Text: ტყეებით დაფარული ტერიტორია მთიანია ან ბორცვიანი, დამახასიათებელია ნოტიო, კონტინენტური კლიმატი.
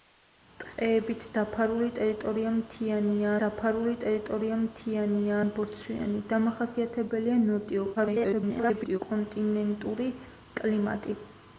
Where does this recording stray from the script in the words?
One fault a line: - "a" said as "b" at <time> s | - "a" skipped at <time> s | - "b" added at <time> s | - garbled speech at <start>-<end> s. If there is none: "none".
- "დაფარული ტერიტორია მთიანია" added at 3.4 s
- garbled speech at 8.0-9.0 s